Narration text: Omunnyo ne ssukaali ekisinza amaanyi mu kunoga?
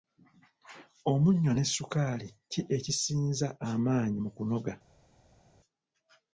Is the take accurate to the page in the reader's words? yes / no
no